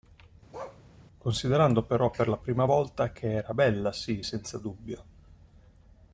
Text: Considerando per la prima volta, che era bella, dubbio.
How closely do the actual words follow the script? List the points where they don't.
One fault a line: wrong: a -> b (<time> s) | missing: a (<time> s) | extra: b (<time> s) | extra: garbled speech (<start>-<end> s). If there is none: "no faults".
extra: però (1.8 s)
extra: sì senza (3.9 s)